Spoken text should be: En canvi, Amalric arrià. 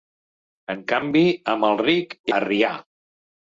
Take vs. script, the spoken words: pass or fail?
pass